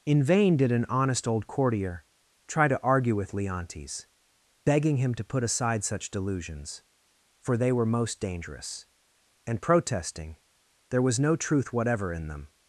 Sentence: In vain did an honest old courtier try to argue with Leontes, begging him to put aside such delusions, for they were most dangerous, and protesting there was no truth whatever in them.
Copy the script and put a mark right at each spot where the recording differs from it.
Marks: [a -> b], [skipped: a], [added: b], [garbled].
In vain did an honest old courtier try to argue with Leontes, begging him to put aside such delusions, for they were most dangerous, and protesting there was no truth whatever in them.